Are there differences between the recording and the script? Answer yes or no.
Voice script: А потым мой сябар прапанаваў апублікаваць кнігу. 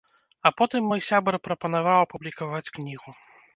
no